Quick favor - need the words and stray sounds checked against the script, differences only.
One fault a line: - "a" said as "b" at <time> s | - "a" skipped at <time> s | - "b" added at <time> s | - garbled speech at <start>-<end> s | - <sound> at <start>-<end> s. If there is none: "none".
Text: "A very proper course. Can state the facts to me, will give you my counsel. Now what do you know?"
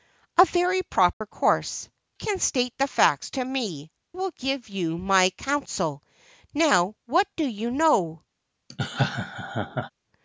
- dropout at 1.1-1.2 s
- laugh at 8.7-9.9 s